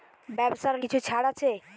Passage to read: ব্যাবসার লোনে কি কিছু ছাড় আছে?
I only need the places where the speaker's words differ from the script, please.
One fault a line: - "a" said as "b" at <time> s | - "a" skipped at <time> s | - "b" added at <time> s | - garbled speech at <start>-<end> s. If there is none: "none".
- "লোনে কি" skipped at 0.8 s